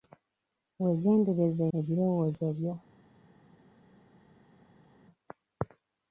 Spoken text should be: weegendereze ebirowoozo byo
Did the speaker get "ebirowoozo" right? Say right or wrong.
right